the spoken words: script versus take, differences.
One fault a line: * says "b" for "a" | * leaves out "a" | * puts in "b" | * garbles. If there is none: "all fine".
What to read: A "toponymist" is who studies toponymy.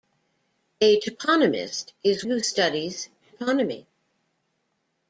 all fine